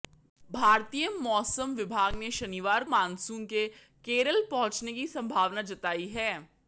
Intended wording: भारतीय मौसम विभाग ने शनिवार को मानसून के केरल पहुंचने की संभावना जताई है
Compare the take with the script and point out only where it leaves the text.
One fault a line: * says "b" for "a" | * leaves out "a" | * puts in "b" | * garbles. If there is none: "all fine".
* leaves out "को"